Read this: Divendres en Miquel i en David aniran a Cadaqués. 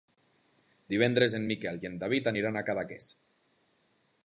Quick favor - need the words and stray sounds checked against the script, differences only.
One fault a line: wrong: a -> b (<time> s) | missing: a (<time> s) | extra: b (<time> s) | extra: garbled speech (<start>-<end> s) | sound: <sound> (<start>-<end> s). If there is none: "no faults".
no faults